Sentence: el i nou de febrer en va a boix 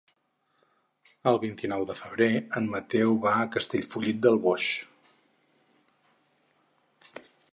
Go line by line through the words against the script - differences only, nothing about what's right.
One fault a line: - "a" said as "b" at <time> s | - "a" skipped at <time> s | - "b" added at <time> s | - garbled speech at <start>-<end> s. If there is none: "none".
- "vint" added at 1.4 s
- "mateu" added at 2.8 s
- "castellfollit del" added at 3.6 s